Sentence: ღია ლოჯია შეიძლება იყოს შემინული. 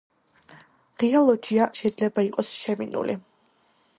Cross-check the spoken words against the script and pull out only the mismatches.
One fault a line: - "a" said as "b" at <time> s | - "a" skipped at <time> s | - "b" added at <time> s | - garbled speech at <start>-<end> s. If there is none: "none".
none